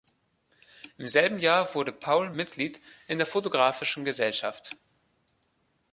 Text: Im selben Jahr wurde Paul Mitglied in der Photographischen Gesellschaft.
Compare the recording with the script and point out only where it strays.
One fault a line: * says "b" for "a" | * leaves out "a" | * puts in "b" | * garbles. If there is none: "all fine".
all fine